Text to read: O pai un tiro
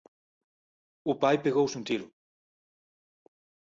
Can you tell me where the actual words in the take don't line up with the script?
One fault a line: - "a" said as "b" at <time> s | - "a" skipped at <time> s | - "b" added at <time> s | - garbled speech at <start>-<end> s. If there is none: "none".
- "pegouse" added at 1.4 s